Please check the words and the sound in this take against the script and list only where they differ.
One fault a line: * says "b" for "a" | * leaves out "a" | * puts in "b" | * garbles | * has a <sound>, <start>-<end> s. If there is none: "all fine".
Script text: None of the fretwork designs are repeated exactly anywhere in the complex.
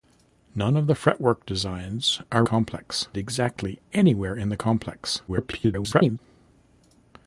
* says "complex" for "repeated"
* garbles